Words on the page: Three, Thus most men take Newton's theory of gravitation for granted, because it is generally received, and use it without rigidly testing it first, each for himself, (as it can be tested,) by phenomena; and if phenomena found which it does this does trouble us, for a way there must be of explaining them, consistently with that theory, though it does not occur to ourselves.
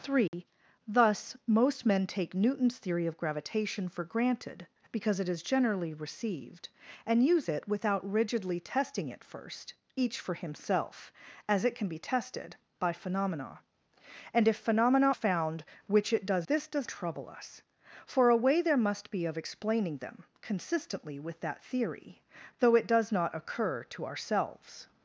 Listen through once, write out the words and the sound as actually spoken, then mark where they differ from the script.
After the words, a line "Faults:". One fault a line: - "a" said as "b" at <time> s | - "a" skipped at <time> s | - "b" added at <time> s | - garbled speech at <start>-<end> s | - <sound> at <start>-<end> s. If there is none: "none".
Three, Thus most men take Newton's theory of gravitation for granted, because it is generally received, and use it without rigidly testing it first, each for himself, (as it can be tested,) by phenomena; and if phenomena found which it does this does trouble us, for a way there must be of explaining them, consistently with that theory, though it does not occur to ourselves.
Faults:
- dropout at 0.3-0.3 s